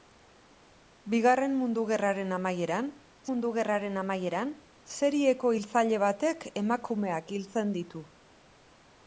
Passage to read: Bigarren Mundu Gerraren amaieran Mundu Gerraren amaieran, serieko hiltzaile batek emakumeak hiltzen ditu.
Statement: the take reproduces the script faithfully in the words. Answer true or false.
true